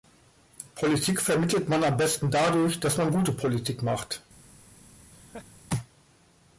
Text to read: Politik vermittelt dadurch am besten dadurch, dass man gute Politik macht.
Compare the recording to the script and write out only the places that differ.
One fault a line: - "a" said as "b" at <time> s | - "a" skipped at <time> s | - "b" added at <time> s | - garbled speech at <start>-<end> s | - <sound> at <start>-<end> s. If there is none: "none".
- "dadurch" said as "man" at 1.7 s
- laugh at 5.1-5.5 s